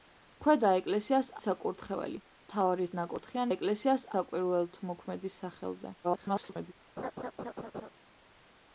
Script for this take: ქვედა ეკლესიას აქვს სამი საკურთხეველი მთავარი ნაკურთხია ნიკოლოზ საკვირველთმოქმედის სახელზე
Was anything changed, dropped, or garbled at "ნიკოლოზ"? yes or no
yes